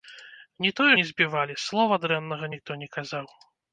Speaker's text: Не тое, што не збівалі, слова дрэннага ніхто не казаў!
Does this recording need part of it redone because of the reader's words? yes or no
yes